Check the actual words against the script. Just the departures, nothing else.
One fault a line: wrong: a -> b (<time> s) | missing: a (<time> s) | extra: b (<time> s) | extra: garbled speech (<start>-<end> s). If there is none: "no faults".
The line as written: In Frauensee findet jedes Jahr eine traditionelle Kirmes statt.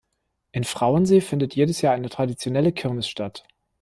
no faults